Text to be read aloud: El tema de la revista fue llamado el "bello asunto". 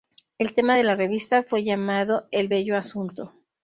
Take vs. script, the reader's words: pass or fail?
pass